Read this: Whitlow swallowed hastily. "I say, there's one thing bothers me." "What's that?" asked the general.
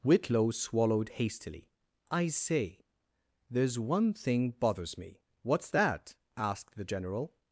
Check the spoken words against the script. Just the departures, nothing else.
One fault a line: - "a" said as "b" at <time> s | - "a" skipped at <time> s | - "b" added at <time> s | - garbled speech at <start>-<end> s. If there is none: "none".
none